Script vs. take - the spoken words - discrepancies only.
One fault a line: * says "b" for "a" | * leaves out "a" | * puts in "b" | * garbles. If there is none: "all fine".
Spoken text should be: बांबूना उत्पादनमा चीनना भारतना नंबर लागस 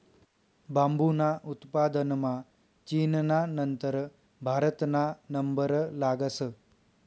* puts in "नंतर"